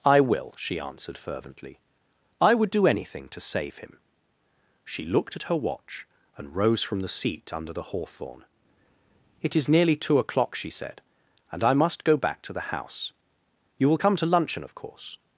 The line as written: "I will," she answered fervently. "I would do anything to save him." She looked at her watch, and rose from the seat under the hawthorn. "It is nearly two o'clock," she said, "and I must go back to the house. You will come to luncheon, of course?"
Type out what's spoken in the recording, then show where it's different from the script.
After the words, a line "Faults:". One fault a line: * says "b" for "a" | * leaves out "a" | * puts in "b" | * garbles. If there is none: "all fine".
"I will," she answered fervently. "I would do anything to save him." She looked at her watch, and rose from the seat under the hawthorn. "It is nearly two o'clock," she said, "and I must go back to the house. You will come to luncheon, of course?"
Faults:
all fine